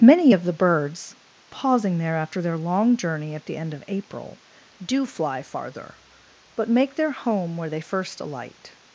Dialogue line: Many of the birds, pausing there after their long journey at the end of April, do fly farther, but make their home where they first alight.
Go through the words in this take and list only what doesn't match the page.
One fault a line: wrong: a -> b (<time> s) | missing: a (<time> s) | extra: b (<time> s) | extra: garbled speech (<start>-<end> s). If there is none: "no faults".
no faults